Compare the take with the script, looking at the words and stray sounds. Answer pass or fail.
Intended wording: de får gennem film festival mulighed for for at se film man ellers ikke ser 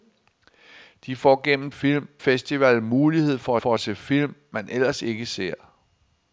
pass